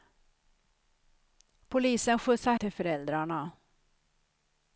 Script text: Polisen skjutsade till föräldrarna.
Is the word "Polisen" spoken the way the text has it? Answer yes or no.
yes